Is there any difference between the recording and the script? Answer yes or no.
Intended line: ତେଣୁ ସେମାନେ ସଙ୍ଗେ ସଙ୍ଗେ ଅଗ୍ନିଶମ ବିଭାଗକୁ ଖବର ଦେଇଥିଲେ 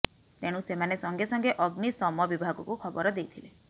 no